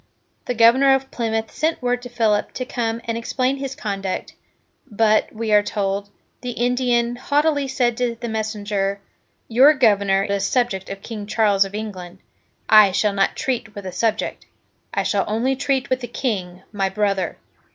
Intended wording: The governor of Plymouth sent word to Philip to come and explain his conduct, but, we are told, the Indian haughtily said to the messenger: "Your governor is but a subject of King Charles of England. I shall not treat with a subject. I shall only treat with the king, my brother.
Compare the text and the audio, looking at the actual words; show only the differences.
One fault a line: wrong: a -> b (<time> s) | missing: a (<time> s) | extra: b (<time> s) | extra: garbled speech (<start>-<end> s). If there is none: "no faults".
missing: is but (10.2 s)